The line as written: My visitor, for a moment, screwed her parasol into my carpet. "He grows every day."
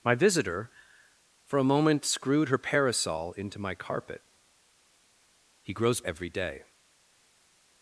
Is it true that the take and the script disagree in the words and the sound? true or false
false